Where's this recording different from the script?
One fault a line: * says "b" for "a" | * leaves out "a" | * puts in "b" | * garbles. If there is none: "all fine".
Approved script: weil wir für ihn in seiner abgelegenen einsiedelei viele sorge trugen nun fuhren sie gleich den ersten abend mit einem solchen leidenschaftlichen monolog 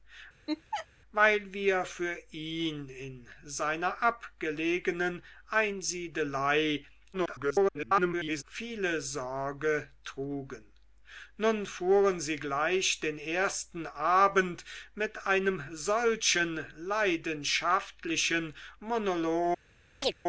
* garbles